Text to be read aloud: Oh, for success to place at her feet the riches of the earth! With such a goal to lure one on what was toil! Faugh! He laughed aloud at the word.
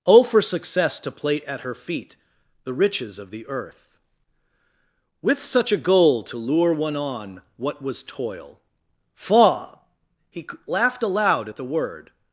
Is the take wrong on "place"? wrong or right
wrong